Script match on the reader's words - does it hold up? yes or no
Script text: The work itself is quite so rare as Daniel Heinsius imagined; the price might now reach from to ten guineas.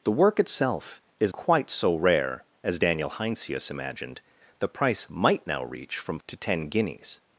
yes